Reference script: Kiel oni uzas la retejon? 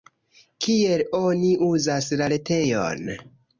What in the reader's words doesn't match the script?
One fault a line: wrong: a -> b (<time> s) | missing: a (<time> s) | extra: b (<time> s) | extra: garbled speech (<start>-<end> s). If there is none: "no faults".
no faults